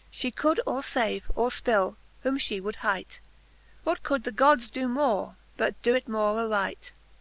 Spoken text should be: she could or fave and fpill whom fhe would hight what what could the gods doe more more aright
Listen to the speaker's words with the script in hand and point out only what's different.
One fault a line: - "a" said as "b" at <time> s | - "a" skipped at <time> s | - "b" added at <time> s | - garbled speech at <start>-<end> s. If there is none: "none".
- "and" said as "or" at 1.4 s
- "what" skipped at 4.0 s
- "but doe it" added at 5.6 s